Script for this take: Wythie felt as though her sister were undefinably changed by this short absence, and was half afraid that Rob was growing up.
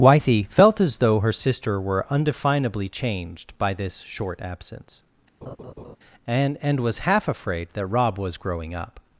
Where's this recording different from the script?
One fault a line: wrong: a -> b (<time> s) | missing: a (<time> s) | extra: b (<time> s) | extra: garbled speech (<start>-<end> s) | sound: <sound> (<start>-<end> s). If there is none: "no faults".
sound: laugh (5.4-6.0 s)
extra: and (6.6 s)